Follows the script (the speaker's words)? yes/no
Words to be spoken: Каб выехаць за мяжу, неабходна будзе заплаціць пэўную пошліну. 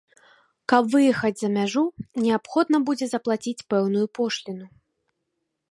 yes